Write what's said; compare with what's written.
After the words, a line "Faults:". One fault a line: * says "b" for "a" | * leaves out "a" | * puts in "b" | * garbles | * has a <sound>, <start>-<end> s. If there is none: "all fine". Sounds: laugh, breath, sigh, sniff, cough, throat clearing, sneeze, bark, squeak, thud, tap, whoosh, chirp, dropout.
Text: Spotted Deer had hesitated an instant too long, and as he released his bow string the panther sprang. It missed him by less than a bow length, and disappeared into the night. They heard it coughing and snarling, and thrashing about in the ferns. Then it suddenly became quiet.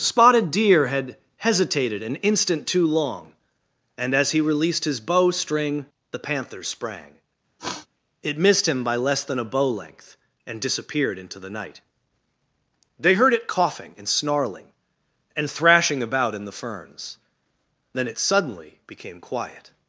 Spotted Deer had hesitated an instant too long, and as he released his bow string the panther sprang. It missed him by less than a bow length, and disappeared into the night. They heard it coughing and snarling, and thrashing about in the ferns. Then it suddenly became quiet.
Faults:
* has a sniff, 7.6-7.9 s